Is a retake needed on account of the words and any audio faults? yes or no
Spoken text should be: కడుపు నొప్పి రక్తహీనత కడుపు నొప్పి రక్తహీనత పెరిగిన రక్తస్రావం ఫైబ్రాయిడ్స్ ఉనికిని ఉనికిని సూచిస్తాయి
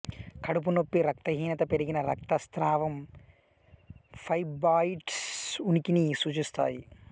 yes